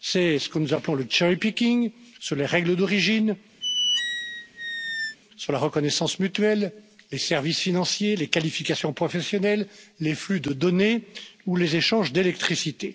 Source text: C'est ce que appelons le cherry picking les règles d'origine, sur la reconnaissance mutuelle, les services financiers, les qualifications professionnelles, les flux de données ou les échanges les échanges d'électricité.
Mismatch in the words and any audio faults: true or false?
true